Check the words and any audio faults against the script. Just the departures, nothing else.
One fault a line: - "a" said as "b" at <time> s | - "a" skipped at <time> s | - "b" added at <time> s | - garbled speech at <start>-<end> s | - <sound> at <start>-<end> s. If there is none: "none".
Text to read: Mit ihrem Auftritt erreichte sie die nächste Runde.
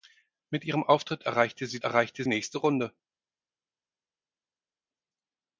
- "die" said as "erreichte" at 1.8 s